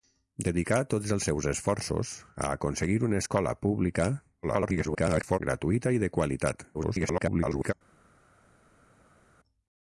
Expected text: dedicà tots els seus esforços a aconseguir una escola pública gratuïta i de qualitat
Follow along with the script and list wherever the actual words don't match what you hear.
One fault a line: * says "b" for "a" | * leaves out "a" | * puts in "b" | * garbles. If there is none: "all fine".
* garbles
* garbles